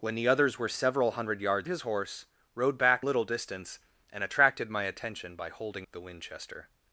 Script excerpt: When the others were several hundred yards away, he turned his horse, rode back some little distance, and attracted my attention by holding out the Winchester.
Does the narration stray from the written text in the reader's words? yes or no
yes